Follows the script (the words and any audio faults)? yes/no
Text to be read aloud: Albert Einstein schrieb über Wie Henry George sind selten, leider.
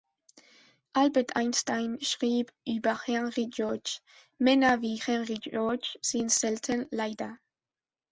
no